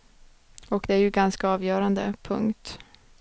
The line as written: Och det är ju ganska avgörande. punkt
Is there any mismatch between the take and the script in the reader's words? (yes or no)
no